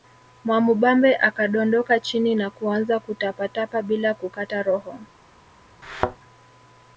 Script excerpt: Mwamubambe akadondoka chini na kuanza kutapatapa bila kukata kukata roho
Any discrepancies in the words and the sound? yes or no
yes